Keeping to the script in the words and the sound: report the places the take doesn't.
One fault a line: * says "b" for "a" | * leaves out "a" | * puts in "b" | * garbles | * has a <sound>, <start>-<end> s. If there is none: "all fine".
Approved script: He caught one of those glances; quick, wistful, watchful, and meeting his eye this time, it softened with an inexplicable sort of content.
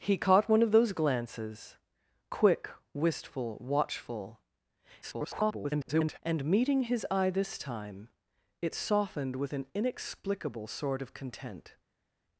* garbles